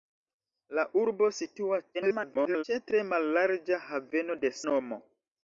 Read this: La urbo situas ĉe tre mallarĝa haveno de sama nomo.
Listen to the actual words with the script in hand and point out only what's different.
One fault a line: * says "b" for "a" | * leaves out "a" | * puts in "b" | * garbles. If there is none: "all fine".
* garbles
* leaves out "sama"